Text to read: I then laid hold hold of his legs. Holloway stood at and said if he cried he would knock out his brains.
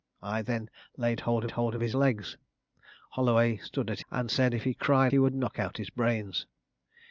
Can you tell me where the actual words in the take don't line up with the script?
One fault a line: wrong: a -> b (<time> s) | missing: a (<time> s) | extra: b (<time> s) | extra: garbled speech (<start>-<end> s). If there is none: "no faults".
no faults